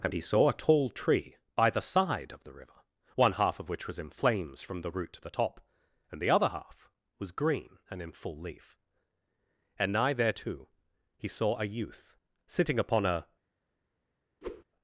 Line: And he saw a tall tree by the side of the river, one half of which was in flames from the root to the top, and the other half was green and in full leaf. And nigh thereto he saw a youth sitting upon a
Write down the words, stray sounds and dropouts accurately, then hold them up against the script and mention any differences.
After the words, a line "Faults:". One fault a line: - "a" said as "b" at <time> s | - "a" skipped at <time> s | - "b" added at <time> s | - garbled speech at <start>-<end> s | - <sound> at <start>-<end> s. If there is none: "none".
And he saw a tall tree by the side of the river, one half of which was in flames from the root to the top, and the other half was green and in full leaf. And nigh thereto he saw a youth sitting upon a
Faults:
- whoosh at 14.4-14.6 s